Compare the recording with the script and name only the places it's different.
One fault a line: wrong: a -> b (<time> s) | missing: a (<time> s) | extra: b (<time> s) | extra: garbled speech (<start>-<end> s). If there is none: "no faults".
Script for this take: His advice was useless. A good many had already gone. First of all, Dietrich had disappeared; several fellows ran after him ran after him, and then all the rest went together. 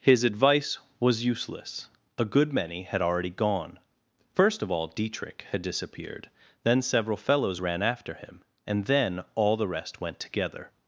extra: then (6.6 s)
missing: ran after him (8.4 s)